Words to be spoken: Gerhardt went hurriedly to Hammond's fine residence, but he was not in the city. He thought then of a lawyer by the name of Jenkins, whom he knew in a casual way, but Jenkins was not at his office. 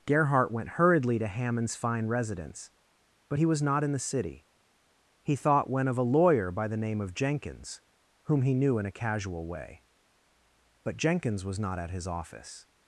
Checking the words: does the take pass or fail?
fail